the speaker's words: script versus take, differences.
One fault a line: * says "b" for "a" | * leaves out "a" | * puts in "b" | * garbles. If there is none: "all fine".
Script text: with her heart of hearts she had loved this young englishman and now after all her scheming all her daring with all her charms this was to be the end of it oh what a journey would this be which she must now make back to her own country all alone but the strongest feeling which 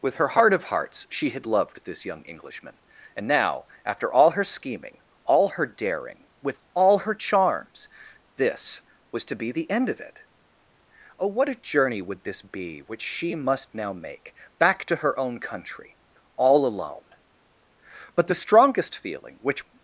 all fine